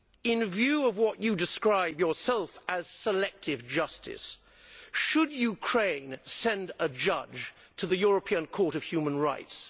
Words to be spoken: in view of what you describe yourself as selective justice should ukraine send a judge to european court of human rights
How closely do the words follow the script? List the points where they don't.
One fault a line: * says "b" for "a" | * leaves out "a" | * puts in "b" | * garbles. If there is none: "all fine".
* puts in "the"